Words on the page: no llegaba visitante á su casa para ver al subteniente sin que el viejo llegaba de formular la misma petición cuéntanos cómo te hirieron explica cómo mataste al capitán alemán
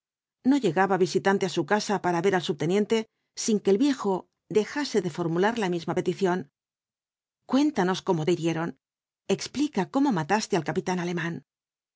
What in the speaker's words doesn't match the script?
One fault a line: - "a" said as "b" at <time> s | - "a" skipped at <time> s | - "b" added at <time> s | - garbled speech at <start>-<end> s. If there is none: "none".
- "llegaba" said as "dejase" at 4.6 s